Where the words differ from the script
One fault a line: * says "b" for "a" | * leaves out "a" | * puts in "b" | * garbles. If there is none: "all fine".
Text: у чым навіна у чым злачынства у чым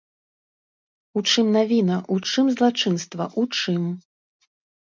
all fine